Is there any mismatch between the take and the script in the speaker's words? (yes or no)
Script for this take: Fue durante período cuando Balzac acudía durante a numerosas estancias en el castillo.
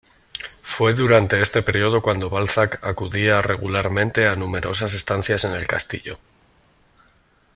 yes